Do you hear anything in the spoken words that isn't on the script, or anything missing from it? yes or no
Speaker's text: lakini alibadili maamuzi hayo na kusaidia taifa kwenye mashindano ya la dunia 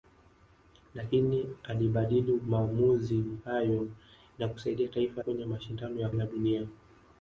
no